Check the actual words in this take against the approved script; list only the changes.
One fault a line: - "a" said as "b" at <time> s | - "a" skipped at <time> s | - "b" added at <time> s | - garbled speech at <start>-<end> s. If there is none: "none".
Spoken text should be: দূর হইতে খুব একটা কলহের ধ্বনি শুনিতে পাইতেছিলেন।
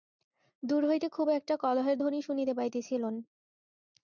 none